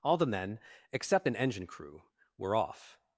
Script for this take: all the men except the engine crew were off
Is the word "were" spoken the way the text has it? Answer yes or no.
yes